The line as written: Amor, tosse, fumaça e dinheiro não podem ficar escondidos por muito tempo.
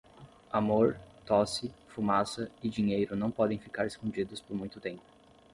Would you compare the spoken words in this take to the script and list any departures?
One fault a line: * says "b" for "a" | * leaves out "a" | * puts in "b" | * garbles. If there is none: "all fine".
all fine